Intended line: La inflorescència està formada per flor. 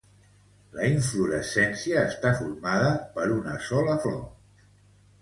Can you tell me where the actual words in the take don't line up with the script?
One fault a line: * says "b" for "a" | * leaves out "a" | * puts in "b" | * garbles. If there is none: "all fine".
* puts in "una sola"